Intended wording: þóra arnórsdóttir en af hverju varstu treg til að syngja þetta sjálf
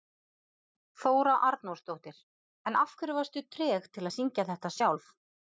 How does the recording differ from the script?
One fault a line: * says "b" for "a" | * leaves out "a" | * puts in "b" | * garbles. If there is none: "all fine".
all fine